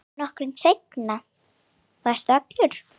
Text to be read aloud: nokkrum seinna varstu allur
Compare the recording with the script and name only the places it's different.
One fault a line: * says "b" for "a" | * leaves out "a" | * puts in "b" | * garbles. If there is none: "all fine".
all fine